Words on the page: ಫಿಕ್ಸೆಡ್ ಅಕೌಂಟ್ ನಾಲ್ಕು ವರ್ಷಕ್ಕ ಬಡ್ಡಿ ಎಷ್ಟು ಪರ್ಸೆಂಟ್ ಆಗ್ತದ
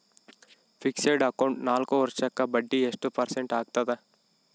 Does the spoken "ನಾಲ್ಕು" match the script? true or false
true